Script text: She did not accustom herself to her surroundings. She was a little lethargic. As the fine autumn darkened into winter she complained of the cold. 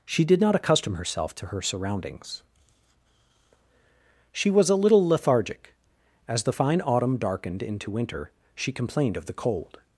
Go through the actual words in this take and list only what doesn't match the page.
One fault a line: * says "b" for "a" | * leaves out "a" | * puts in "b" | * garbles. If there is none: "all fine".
all fine